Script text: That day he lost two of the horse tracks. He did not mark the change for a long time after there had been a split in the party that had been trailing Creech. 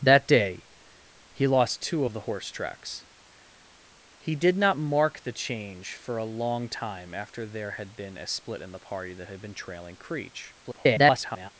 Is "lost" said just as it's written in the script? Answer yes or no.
yes